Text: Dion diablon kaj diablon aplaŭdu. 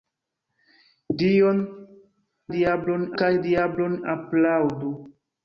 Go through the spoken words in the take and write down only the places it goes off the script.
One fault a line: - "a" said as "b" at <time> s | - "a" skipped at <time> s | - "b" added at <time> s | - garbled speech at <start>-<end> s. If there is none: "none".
none